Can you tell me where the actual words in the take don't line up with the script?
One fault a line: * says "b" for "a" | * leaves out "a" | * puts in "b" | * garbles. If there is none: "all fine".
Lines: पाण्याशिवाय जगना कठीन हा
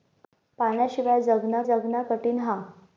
* puts in "जगना"